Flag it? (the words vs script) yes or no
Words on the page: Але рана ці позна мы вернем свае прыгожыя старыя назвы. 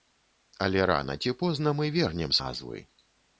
yes